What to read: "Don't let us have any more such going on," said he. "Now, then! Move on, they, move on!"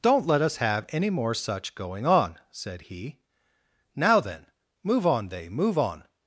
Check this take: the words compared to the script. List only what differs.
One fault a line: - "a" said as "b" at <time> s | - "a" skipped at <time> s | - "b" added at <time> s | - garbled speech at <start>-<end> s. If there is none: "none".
none